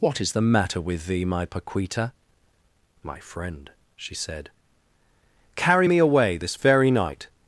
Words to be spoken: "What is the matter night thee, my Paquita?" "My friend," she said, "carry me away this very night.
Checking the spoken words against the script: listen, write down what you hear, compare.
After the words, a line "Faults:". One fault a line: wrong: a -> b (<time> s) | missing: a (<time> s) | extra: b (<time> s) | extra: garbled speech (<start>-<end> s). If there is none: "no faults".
"What is the matter with thee, my Paquita?" "My friend," she said, "carry me away this very night.
Faults:
wrong: night -> with (0.8 s)